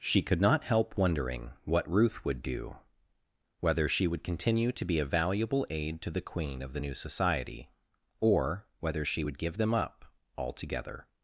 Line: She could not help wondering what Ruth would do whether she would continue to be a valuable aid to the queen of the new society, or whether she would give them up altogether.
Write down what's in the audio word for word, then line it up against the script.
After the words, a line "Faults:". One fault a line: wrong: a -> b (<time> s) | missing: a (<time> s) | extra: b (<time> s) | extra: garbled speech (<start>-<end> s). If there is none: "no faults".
She could not help wondering what Ruth would do whether she would continue to be a valuable aid to the queen of the new society, or whether she would give them up altogether.
Faults:
no faults